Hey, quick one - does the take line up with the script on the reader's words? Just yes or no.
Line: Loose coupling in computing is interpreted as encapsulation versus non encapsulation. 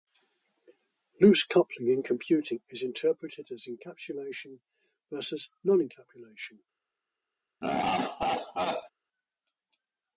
yes